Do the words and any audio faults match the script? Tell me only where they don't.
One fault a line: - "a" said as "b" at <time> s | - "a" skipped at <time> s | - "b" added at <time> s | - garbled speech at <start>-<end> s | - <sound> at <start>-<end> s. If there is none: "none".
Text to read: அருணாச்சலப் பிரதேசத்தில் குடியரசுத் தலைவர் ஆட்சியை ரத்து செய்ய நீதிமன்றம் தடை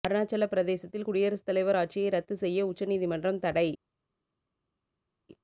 - "உச்ச" added at 2.7 s